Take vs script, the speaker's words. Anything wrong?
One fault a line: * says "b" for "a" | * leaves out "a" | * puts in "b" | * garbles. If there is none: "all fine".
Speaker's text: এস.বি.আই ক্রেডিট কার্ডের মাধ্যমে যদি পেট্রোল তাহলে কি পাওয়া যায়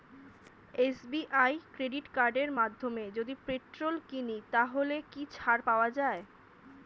* puts in "কিনি"
* puts in "ছাড়"